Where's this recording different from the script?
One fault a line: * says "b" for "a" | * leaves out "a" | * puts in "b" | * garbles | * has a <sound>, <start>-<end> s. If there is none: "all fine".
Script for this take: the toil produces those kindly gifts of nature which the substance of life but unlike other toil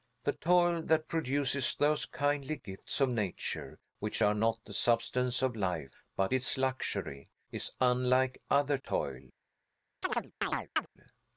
* puts in "that"
* puts in "are not"
* puts in "its luxury is"
* has a chirp, 10.0-10.9 s